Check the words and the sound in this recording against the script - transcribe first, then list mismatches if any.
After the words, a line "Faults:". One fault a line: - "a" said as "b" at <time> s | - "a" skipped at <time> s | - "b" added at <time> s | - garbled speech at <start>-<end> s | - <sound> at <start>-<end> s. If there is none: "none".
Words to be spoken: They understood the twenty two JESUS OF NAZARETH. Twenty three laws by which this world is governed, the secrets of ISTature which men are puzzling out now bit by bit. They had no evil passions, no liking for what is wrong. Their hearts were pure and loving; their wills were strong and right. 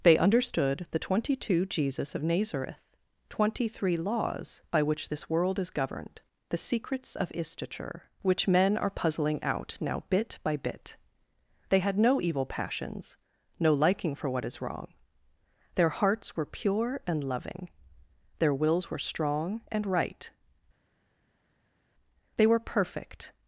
They understood the twenty two JESUS OF NAZARETH. Twenty three laws by which this world is governed, the secrets of ISTature which men are puzzling out now bit by bit. They had no evil passions, no liking for what is wrong. Their hearts were pure and loving; their wills were strong and right. They were perfect
Faults:
- "They were perfect" added at 22.4 s